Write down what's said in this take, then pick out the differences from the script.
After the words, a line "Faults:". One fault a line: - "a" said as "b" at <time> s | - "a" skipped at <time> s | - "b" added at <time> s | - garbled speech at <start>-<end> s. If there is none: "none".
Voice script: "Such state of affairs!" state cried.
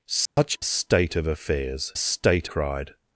"Such state of affairs!" state cried.
Faults:
none